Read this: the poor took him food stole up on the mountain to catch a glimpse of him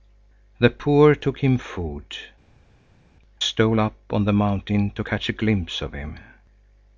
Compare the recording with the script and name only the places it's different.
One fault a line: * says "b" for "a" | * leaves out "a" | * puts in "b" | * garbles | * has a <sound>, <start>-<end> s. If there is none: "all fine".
all fine